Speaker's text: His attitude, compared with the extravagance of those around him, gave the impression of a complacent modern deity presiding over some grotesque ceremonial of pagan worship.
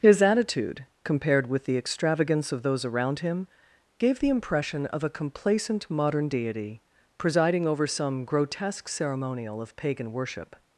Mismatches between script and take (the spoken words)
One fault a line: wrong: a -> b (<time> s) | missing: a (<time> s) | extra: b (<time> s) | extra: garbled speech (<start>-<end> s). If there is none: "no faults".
no faults